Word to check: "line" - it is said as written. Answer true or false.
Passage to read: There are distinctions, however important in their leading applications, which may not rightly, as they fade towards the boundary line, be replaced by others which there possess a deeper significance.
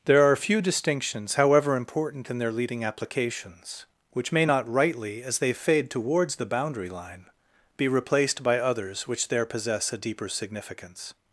true